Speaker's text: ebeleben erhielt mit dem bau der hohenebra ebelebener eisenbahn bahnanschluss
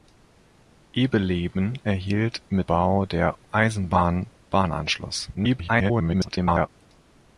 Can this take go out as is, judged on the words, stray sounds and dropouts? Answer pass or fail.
fail